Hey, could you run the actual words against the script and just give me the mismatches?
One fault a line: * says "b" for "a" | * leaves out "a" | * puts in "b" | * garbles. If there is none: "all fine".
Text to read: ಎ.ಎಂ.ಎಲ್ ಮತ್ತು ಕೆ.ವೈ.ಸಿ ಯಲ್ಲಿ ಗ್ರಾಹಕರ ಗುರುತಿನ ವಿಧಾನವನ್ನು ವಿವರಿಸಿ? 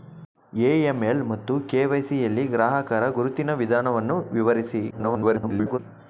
* garbles